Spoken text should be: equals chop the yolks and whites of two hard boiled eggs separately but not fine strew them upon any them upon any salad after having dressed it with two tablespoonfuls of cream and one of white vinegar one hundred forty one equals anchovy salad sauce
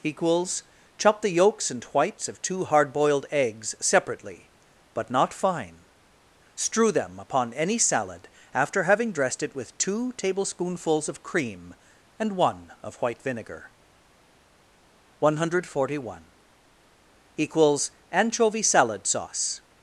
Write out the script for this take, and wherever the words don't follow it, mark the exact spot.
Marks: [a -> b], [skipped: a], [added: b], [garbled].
equals chop the yolks and whites of two hard boiled eggs separately but not fine strew them upon any [skipped: them upon any] salad after having dressed it with two tablespoonfuls of cream and one of white vinegar one hundred forty one equals anchovy salad sauce